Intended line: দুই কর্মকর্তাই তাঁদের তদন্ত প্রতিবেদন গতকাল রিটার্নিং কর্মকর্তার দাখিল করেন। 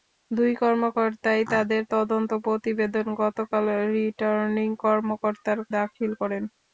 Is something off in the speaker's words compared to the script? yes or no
no